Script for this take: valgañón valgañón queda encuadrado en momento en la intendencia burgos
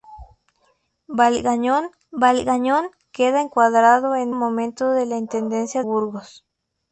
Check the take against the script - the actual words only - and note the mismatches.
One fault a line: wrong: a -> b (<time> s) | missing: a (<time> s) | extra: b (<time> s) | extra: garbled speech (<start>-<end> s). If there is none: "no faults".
no faults